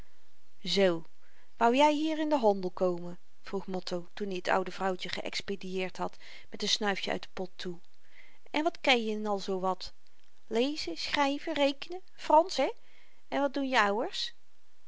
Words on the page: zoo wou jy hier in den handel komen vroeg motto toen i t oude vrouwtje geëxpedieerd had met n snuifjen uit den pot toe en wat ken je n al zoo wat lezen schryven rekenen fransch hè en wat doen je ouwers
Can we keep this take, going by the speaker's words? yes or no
yes